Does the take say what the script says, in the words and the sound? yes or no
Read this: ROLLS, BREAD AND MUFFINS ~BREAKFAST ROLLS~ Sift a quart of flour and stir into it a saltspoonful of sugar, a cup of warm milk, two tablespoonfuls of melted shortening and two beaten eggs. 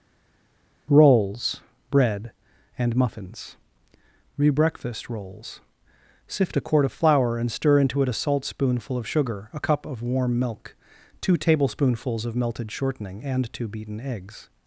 no